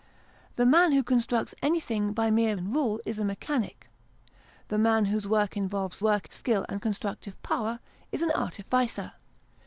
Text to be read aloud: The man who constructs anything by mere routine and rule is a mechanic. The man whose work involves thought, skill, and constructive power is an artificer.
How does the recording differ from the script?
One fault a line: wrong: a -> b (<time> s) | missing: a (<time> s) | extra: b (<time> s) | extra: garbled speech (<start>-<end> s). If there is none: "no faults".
missing: routine (2.5 s)
wrong: thought -> work (6.0 s)